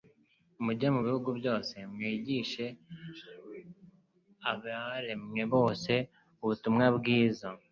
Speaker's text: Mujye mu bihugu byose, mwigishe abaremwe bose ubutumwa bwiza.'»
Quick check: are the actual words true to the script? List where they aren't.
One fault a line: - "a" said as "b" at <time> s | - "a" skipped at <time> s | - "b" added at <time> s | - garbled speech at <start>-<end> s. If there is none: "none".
none